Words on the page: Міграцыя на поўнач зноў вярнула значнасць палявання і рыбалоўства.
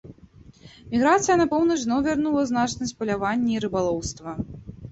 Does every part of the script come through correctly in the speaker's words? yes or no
yes